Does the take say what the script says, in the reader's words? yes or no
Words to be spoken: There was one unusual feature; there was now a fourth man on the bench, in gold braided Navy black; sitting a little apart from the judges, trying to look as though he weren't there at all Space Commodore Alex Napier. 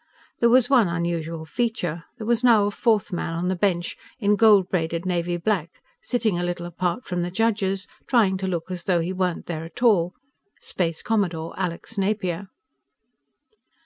yes